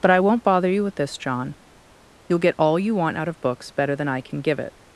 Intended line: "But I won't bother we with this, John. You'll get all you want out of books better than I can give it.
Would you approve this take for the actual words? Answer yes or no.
no